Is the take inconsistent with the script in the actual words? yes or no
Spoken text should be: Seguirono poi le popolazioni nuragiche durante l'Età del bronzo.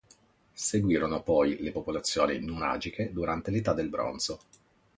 no